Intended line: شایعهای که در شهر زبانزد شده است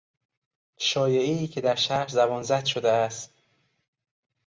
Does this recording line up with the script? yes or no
yes